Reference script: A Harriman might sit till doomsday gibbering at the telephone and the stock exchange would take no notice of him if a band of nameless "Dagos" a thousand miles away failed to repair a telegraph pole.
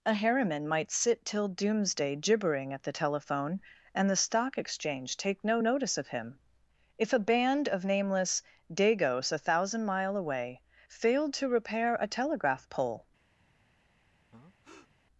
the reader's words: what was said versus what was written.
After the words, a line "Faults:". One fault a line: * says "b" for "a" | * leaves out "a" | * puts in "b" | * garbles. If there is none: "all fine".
A Harriman might sit till doomsday gibbering at the telephone and the stock exchange take no notice of him if a band of nameless "Dagos" a thousand mile away failed to repair a telegraph pole.
Faults:
* leaves out "would"
* says "mile" for "miles"